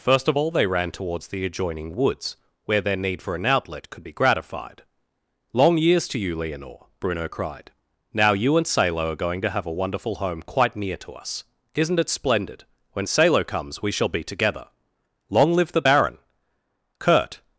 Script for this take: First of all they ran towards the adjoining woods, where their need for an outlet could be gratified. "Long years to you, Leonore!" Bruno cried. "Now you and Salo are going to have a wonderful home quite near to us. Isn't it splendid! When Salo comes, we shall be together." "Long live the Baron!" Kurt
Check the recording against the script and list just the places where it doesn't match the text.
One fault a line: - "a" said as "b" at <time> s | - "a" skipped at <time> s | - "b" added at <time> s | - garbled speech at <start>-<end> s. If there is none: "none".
none